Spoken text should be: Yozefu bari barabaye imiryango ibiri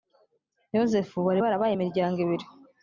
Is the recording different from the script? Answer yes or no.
no